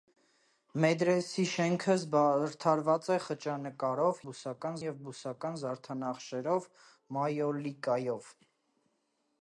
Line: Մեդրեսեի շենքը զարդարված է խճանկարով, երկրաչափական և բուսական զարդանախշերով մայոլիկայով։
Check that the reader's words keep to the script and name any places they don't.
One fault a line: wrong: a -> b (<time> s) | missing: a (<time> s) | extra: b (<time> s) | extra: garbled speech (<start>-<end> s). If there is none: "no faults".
wrong: երկրաչափական -> բուսական (4.3 s)